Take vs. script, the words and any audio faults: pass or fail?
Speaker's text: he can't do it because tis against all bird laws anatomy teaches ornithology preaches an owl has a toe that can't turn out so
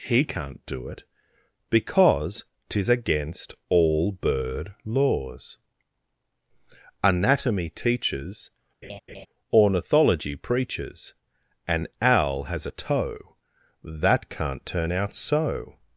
fail